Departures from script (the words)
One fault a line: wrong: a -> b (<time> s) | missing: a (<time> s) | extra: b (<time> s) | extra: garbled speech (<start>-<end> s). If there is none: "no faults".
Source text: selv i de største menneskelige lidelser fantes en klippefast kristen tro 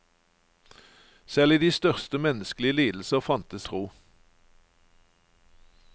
missing: en klippefast kristen (3.7 s)